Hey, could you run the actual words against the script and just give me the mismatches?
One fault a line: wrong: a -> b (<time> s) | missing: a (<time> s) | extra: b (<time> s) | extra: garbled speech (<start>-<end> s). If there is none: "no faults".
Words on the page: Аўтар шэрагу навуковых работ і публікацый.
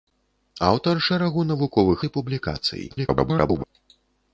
missing: работ (2.0 s)
extra: garbled speech (2.9-3.6 s)